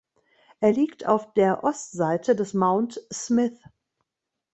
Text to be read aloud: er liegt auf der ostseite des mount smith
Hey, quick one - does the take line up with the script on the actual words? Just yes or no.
yes